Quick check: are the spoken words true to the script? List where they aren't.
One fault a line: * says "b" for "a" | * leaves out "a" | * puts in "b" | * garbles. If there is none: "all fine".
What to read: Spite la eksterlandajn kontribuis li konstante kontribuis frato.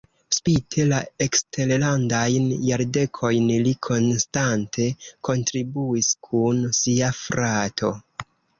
* says "jardekojn" for "kontribuis"
* puts in "kun sia"